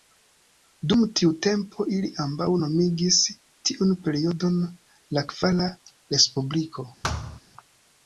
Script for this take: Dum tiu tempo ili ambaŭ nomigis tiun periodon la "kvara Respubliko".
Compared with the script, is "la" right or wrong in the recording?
right